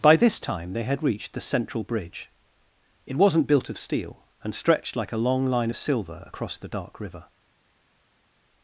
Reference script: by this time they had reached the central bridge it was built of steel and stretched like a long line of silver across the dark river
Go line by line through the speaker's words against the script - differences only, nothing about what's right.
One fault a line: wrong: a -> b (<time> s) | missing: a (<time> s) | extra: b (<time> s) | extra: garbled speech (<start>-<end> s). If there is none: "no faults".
wrong: was -> wasn't (3.2 s)